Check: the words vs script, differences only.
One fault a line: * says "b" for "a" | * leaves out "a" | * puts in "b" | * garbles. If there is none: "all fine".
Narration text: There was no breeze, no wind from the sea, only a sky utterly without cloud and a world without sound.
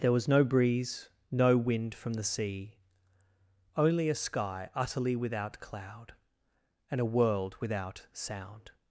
all fine